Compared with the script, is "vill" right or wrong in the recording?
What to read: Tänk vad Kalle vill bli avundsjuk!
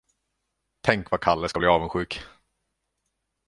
wrong